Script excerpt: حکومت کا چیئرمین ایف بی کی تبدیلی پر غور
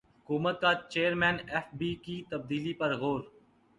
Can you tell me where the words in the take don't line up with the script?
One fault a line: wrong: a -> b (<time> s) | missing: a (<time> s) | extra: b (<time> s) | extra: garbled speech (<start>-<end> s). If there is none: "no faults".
no faults